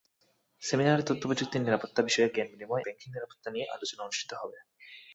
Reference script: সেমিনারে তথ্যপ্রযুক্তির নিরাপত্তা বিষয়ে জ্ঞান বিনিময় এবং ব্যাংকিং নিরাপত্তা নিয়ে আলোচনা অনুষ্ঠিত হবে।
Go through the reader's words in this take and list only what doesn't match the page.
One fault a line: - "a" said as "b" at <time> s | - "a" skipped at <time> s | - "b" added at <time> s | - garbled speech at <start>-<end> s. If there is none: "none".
- "এবং" skipped at 2.8 s